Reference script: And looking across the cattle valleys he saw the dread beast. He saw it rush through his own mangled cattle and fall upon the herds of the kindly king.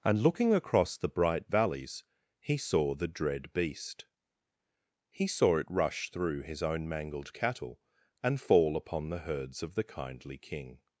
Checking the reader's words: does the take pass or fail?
fail